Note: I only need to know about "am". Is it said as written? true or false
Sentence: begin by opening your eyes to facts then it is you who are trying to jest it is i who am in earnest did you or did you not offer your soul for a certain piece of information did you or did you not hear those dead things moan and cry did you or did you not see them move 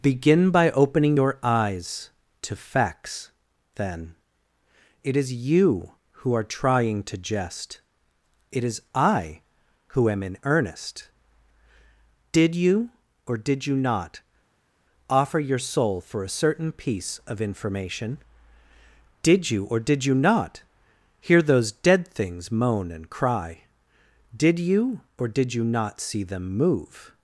true